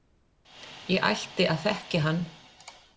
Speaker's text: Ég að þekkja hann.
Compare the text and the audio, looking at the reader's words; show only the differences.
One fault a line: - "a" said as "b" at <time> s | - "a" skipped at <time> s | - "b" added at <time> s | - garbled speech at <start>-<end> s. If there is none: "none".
- "ætti" added at 1.1 s